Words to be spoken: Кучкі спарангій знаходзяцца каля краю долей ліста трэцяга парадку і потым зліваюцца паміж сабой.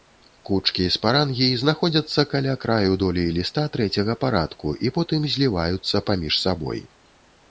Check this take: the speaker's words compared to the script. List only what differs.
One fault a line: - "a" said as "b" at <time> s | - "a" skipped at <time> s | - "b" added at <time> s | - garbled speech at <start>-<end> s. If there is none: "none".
none